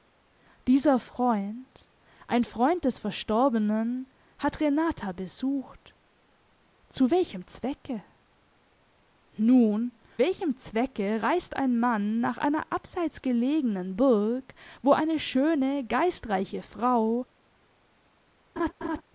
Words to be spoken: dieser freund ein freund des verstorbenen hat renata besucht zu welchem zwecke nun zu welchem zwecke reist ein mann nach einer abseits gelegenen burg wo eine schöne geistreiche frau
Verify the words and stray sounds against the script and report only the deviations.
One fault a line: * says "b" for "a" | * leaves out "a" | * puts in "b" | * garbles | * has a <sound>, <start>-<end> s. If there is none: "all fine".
* leaves out "zu"
* has a laugh, 18.6-19.0 s